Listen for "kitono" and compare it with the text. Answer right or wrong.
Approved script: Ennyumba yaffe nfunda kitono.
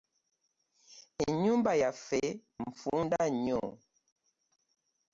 wrong